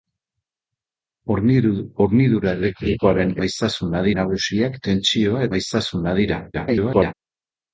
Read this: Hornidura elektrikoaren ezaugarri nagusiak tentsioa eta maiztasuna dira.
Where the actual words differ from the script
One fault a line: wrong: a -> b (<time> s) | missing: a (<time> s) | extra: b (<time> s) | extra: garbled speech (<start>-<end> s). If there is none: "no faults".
wrong: ezaugarri -> maiztasuna (3.4 s)
missing: eta (5.5 s)
extra: garbled speech (6.5-7.1 s)